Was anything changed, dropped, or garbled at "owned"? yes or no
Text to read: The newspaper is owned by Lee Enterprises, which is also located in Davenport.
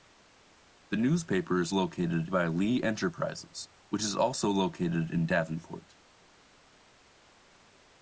yes